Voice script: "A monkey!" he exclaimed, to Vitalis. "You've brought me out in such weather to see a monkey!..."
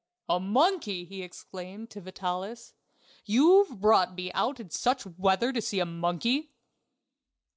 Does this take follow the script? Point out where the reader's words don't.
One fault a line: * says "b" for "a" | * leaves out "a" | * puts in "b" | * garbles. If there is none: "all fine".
all fine